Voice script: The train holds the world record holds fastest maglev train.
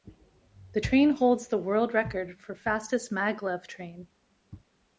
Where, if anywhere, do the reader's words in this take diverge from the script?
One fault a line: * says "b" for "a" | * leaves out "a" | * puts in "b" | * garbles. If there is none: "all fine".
* says "for" for "holds"